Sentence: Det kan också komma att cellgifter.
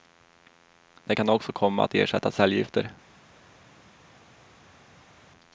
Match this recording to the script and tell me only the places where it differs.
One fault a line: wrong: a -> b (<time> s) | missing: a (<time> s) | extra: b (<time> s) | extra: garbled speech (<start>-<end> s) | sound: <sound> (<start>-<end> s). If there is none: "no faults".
extra: ersätta (1.9 s)